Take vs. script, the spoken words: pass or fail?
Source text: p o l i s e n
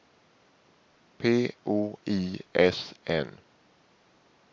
fail